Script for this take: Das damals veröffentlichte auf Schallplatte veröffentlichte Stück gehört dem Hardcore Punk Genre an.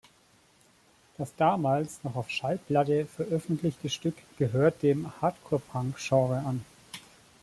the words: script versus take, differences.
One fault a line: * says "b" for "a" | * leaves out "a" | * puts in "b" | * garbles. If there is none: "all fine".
* says "noch" for "veröffentlichte"